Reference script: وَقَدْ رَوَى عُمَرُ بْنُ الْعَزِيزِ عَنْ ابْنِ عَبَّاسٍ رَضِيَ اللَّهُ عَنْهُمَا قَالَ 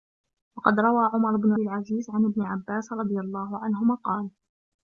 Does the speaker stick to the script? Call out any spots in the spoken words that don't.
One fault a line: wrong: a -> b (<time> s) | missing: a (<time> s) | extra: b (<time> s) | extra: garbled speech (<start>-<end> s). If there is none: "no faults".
no faults